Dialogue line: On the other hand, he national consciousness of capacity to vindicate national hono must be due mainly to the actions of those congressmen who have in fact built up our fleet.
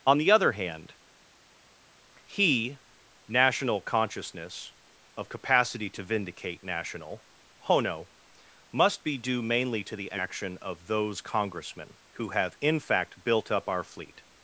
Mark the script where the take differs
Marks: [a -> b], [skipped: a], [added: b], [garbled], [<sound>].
On the other hand, he national consciousness of capacity to vindicate national hono must be due mainly to the [actions -> action] of those congressmen who have in fact built up our fleet.